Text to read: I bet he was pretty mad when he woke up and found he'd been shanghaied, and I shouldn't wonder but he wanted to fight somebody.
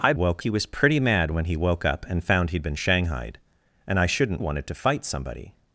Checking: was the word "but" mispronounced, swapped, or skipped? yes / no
yes